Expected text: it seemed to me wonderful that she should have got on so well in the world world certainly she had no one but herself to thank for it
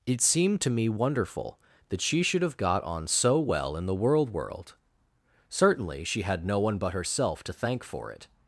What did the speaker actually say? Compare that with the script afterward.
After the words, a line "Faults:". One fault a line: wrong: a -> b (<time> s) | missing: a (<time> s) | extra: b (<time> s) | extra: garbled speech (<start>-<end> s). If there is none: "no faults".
it seemed to me wonderful that she should have got on so well in the world world certainly she had no one but herself to thank for it
Faults:
no faults